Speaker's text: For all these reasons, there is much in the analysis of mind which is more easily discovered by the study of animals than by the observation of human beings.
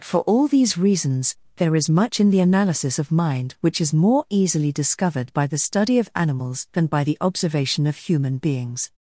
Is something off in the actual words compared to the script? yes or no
no